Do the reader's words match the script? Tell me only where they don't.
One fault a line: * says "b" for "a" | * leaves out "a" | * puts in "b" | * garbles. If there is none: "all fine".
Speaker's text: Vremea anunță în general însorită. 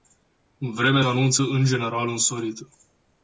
all fine